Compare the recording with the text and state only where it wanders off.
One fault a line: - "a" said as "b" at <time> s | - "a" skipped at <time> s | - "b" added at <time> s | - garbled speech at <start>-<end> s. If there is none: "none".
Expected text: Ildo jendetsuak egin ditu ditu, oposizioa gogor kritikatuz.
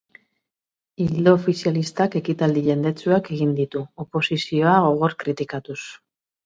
- "ofizialistak ekitaldi" added at 1.4 s
- "ditu" skipped at 3.9 s